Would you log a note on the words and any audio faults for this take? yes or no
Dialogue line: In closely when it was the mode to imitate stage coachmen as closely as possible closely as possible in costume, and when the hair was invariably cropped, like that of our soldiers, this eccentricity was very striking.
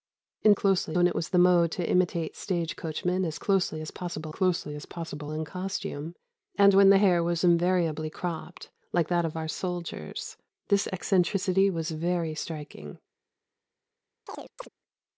yes